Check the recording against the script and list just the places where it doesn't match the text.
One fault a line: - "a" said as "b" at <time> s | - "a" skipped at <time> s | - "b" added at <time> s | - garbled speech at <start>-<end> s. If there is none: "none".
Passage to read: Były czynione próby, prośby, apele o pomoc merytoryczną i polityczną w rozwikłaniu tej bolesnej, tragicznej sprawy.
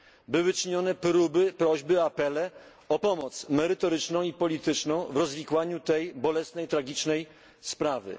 none